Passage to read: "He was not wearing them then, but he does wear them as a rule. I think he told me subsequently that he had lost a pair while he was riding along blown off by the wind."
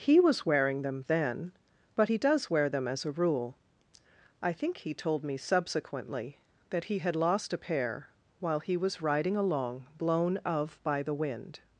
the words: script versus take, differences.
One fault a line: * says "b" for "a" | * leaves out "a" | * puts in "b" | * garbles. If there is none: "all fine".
* leaves out "not"
* says "of" for "off"